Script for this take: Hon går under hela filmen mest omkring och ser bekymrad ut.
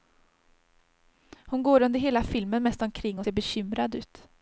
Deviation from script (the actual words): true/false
false